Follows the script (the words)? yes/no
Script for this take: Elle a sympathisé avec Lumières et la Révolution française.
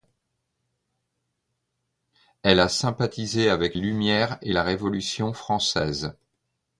yes